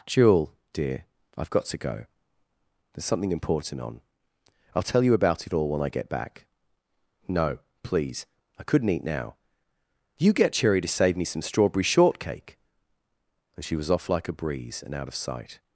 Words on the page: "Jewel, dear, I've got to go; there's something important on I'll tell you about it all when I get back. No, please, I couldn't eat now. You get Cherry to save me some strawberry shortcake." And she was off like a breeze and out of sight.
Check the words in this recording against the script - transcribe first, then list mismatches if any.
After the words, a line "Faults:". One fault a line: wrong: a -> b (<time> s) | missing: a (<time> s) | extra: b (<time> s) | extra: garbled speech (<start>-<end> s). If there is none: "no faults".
"Jewel, dear, I've got to go; there's something important on I'll tell you about it all when I get back. No, please, I couldn't eat now. You get Cherry to save me some strawberry shortcake." And she was off like a breeze and out of sight.
Faults:
no faults